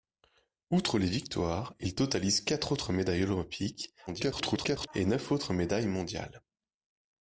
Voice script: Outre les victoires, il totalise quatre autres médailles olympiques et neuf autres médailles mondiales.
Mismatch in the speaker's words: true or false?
true